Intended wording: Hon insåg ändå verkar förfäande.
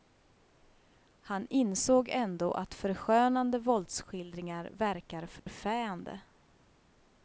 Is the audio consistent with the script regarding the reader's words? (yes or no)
no